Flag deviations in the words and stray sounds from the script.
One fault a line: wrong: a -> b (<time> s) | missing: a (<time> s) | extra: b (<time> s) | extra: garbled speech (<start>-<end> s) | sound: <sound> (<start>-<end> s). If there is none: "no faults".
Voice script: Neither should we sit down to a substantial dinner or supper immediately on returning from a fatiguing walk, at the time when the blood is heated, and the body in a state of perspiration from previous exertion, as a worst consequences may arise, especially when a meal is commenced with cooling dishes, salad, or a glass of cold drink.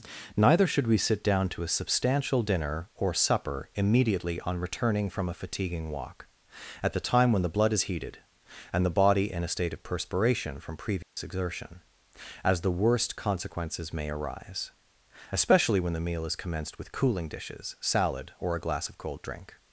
sound: dropout (11.0-11.2 s)
wrong: a -> the (12.6 s)
wrong: a -> the (15.9 s)